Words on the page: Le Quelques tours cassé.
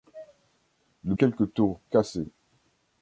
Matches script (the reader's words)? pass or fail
pass